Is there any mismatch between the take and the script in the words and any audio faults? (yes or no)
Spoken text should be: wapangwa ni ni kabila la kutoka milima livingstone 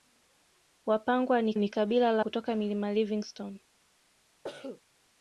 yes